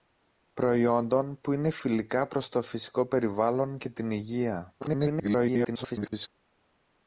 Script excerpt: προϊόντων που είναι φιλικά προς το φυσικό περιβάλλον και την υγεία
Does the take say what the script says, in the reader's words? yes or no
no